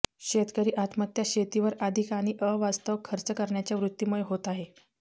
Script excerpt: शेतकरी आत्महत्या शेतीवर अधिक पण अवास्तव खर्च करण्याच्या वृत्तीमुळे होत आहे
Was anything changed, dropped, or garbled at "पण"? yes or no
yes